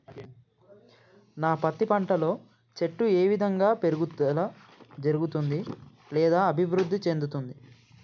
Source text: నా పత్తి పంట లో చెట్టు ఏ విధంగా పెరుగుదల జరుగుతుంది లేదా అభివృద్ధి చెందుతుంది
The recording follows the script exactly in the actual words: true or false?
true